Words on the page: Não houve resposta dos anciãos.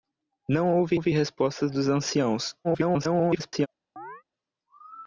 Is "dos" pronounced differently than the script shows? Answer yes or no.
no